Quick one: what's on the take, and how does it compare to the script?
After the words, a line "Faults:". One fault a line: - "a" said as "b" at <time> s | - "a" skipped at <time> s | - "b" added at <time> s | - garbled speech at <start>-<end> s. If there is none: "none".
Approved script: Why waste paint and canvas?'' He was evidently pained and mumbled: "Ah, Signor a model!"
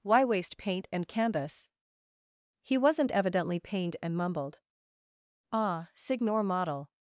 Why waste paint and canvas?'' He wasn't evidently pained and mumbled: "Ah, Signor model!"
Faults:
- "was" said as "wasn't" at 2.8 s
- "a" skipped at 6.4 s